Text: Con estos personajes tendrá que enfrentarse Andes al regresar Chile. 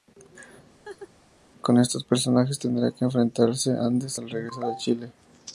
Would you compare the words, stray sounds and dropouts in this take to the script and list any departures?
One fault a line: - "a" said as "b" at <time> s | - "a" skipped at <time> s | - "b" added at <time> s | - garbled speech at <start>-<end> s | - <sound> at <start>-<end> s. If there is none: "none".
- laugh at 0.9-1.1 s
- "a" added at 4.6 s